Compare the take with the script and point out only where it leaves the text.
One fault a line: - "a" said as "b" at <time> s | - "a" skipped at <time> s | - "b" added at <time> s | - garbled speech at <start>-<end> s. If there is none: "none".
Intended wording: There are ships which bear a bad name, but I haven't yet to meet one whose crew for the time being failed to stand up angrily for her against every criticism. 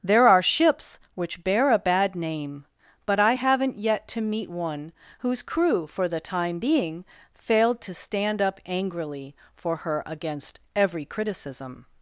none